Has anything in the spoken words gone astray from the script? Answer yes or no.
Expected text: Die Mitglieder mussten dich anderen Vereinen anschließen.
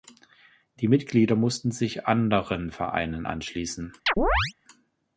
yes